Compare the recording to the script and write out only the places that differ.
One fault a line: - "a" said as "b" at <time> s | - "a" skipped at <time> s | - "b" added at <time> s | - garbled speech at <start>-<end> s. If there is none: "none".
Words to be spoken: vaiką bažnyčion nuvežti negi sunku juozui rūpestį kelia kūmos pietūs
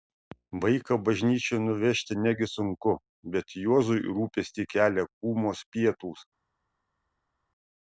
- "bet" added at 3.4 s